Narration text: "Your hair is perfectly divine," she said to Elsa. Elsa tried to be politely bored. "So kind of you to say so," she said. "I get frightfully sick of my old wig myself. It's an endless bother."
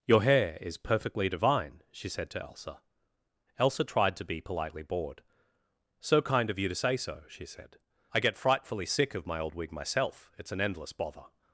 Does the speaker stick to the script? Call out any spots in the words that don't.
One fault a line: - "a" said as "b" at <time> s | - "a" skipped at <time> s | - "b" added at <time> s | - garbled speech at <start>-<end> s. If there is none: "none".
none